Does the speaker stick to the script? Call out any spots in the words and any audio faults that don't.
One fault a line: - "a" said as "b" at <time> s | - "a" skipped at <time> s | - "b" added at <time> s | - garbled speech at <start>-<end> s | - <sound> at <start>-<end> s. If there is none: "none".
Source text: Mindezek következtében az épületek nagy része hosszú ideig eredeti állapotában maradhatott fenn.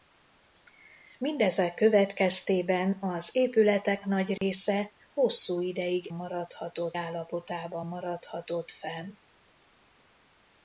- dropout at 4.4-4.4 s
- "eredeti" said as "maradhatott" at 6.1 s